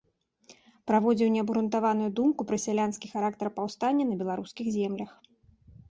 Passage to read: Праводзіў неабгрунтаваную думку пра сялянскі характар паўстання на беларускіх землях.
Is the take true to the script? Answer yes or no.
yes